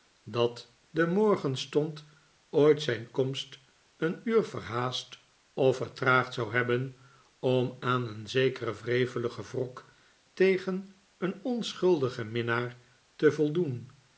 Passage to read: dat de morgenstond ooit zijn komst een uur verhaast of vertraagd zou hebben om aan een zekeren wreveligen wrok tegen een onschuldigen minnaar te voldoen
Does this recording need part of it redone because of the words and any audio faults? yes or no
no